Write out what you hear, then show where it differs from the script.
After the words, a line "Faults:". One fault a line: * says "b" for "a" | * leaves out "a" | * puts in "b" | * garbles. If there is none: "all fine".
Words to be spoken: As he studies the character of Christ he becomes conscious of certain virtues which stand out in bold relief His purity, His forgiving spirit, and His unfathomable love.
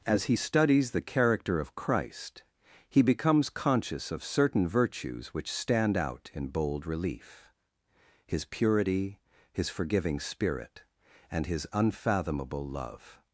As he studies the character of Christ he becomes conscious of certain virtues which stand out in bold relief His purity, His forgiving spirit, and His unfathomable love.
Faults:
all fine